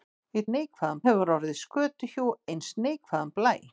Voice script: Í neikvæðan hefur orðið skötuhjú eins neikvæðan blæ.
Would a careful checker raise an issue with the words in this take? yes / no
no